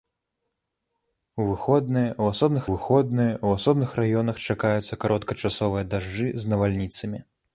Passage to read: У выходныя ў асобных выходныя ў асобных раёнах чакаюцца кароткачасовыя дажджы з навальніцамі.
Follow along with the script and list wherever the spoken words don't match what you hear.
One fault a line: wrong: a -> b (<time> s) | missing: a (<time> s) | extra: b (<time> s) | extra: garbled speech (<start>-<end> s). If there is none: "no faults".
no faults